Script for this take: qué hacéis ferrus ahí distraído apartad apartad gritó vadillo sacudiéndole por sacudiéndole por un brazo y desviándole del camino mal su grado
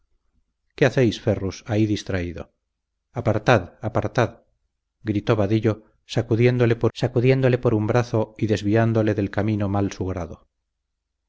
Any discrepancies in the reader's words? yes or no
no